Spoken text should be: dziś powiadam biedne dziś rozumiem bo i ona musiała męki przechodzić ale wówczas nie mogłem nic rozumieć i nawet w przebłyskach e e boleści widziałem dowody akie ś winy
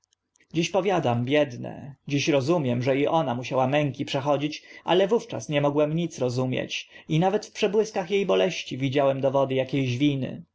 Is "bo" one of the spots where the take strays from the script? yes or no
yes